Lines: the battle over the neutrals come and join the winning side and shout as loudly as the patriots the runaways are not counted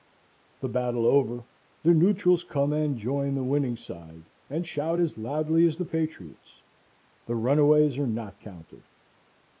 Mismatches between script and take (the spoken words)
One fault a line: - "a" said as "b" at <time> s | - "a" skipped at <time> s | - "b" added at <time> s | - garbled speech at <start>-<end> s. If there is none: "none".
none